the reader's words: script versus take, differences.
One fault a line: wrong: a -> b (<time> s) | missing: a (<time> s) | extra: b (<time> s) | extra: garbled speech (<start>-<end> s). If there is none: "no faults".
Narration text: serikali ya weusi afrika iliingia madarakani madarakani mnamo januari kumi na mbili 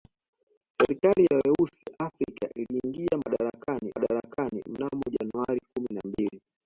no faults